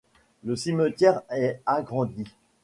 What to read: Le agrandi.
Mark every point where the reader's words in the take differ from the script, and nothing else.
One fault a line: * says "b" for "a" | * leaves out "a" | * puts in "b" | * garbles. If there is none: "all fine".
* puts in "cimetière est"